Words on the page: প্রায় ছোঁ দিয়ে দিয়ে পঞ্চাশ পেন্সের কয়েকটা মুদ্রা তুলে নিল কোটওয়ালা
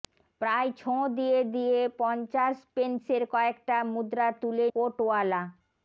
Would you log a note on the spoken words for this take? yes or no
yes